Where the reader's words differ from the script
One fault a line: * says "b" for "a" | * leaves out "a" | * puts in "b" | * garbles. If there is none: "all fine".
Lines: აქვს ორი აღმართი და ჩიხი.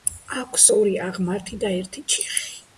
* puts in "ერთი"